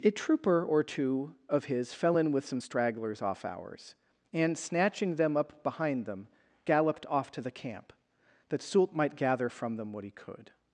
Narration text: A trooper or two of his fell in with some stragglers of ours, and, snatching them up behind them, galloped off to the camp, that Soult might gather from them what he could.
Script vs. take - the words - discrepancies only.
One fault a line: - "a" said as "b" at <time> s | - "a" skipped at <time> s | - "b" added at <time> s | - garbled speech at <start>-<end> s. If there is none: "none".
- "of" said as "off" at 3.2 s